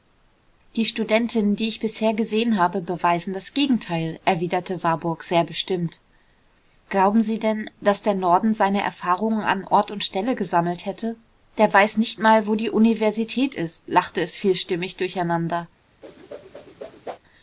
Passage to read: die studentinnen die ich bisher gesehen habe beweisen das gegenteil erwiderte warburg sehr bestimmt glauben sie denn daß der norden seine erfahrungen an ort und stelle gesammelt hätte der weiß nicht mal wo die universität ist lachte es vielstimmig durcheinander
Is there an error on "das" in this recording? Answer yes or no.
no